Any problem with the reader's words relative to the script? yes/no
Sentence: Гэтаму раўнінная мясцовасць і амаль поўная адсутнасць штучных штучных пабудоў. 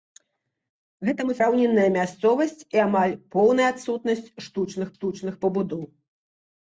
no